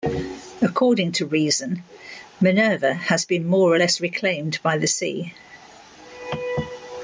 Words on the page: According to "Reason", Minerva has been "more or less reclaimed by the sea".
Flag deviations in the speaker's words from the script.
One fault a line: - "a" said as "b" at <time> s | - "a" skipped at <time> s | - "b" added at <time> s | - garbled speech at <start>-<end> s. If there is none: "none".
none